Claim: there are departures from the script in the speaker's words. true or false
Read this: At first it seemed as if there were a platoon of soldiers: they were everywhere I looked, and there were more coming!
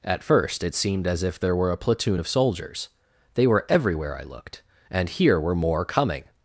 true